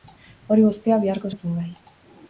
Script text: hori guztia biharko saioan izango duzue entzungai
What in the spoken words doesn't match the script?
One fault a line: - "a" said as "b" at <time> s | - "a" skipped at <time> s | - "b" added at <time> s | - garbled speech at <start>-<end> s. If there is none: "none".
- "saioan izango duzue" skipped at 1.3 s